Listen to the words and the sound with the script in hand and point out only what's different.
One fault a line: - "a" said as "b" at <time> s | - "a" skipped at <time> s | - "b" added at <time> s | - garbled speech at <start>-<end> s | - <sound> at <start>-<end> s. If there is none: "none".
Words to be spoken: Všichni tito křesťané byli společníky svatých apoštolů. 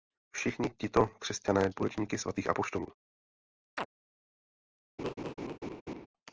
- "byli" skipped at 1.7 s
- chirp at 3.8-3.9 s
- laugh at 5.0-6.1 s